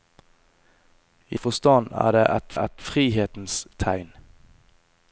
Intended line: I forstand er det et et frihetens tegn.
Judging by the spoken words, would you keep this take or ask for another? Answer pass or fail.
pass